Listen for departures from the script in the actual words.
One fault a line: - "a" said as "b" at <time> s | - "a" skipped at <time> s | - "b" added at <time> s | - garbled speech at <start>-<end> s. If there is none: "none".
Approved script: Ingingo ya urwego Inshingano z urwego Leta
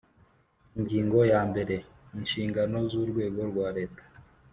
- "urwego" said as "mbere" at 1.5 s
- "rwa" added at 3.5 s